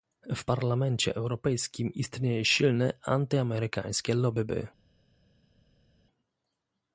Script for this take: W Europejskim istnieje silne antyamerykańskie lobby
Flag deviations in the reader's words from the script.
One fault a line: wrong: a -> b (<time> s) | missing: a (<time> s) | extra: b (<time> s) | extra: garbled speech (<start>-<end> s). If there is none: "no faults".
extra: Parlamencie (0.4 s)